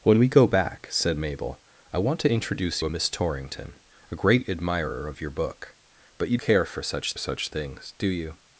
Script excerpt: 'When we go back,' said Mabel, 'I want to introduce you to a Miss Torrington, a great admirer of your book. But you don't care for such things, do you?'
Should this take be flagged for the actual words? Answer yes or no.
yes